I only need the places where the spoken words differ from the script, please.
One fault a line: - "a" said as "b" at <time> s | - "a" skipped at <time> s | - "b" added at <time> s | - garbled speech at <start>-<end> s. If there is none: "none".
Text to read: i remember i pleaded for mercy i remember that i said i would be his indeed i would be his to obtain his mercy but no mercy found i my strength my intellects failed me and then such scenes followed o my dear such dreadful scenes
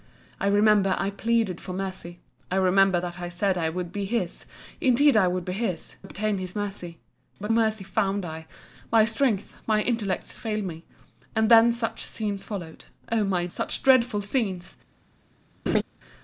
- "to" skipped at 6.0 s
- "no" skipped at 7.5 s
- "dear" skipped at 13.5 s